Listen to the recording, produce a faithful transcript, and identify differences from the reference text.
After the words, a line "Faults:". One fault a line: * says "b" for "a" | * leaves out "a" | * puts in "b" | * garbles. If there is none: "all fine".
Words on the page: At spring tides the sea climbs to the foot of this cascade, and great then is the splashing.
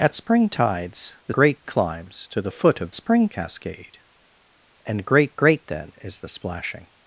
At spring tides the great climbs to the foot of spring cascade, and great great then is the splashing.
Faults:
* says "great" for "sea"
* says "spring" for "this"
* puts in "great"